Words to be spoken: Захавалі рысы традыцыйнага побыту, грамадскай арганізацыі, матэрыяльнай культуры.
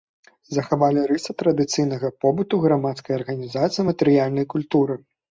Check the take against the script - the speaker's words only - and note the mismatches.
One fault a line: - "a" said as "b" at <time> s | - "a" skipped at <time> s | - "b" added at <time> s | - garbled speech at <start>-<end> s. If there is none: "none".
none